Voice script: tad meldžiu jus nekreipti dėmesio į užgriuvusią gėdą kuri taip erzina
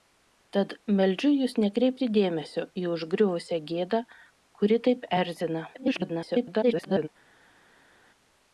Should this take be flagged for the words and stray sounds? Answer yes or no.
yes